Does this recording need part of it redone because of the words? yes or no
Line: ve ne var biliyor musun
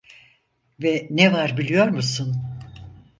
no